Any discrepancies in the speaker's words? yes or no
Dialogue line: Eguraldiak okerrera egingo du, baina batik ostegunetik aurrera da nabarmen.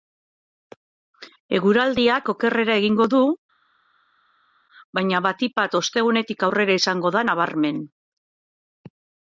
yes